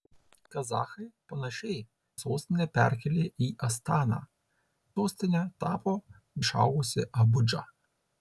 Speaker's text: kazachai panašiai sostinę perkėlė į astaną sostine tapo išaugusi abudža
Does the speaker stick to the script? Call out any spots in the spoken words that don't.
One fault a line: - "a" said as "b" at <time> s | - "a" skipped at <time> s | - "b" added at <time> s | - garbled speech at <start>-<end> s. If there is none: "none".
none